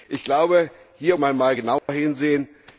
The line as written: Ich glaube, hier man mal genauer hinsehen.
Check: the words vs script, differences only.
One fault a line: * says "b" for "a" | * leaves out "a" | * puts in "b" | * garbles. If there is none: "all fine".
all fine